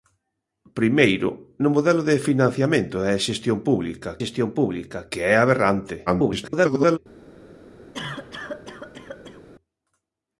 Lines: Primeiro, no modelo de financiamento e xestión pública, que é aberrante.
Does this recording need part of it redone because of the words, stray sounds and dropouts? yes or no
yes